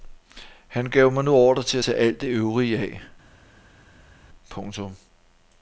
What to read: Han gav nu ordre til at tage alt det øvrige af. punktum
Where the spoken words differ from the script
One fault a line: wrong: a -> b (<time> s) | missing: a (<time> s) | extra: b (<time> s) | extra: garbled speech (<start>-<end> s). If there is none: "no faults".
extra: mig (1.1 s)